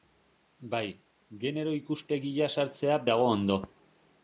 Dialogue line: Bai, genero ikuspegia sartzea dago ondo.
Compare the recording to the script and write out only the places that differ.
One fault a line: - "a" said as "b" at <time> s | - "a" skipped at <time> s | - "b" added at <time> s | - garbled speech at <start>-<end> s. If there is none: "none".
none